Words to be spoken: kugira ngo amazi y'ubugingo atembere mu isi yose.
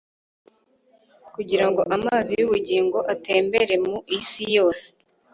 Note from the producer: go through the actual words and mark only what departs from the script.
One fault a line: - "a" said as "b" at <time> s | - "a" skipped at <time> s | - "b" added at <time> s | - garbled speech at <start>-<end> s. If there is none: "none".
none